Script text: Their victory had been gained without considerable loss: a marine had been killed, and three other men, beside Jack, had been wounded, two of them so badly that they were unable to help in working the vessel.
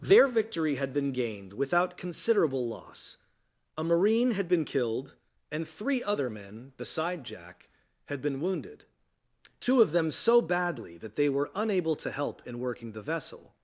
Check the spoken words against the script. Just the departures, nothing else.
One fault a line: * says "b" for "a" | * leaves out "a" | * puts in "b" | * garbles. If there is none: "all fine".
all fine